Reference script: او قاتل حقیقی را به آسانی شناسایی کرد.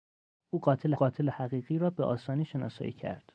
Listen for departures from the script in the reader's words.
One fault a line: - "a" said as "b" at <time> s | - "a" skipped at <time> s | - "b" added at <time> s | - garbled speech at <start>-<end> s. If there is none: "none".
- "قاتل" added at 0.9 s